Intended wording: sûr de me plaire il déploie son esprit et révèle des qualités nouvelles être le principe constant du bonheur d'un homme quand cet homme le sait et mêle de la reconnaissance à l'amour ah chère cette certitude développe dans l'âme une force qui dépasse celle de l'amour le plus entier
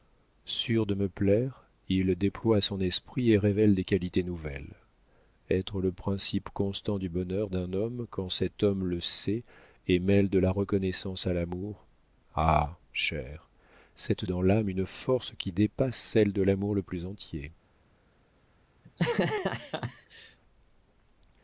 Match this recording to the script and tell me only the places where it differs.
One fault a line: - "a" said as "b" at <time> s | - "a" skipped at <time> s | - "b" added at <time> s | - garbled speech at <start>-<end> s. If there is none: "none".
- "certitude développe" skipped at 14.2 s